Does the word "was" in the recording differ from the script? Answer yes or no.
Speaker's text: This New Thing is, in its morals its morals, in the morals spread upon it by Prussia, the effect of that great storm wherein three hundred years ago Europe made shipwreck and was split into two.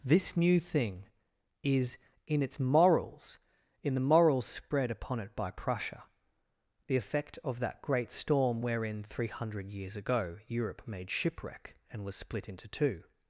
no